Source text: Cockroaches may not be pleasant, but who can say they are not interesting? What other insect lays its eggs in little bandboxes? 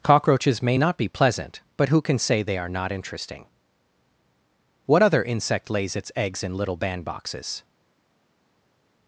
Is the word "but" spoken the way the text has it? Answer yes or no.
yes